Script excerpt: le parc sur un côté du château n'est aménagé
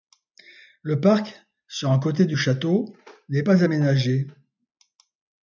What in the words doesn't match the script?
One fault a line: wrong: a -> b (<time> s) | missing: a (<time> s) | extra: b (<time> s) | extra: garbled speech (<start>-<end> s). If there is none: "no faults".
extra: pas (3.4 s)